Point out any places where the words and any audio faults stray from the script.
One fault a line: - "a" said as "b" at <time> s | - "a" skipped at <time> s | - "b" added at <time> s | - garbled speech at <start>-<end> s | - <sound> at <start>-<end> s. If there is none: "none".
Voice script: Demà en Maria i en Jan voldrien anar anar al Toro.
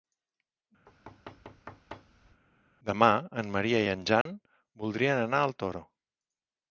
- thud at 0.9-2.4 s
- dropout at 4.2-4.3 s
- "anar" skipped at 5.4 s